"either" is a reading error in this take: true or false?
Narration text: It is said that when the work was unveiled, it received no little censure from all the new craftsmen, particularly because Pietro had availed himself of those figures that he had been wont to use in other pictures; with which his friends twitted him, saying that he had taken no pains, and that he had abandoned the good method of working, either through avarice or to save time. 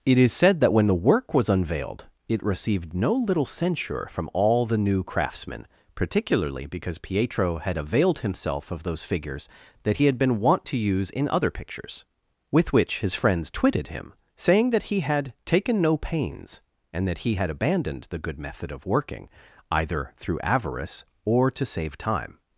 false